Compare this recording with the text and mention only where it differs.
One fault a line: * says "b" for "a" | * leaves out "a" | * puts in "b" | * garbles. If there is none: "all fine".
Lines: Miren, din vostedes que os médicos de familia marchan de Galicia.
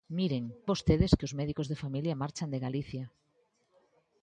* leaves out "din"